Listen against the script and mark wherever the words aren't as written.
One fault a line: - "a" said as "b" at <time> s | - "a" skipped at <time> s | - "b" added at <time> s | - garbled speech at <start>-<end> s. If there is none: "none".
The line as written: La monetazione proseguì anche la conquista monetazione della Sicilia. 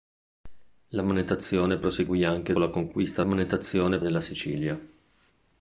none